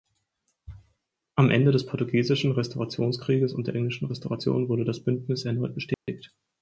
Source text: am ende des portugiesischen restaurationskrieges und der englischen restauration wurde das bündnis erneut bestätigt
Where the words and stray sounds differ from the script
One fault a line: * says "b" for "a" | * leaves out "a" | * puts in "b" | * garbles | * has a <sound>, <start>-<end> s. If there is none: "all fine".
* has a dropout, 5.9-6.1 s